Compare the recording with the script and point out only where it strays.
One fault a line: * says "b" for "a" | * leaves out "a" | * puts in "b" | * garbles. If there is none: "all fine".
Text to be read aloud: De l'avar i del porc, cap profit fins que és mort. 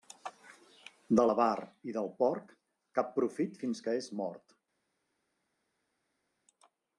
all fine